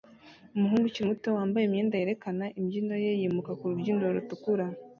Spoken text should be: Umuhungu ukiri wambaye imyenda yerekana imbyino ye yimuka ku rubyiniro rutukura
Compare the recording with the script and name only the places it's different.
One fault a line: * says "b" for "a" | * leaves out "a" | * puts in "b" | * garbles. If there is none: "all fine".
* puts in "muto"